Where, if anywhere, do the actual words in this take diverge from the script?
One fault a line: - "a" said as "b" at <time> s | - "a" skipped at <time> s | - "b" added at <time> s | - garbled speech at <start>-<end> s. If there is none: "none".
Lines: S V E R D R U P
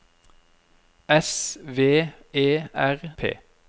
- "D R U" skipped at 3.0 s